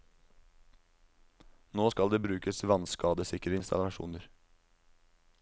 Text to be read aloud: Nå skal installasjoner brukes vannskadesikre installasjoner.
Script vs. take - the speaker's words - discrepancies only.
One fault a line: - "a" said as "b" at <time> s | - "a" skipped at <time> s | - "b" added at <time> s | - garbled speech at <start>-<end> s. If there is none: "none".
- "installasjoner" said as "det" at 2.1 s